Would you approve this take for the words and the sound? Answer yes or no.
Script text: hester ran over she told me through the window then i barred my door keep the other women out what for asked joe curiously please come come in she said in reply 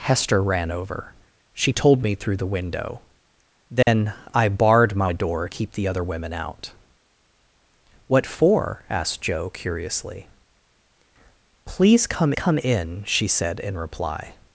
no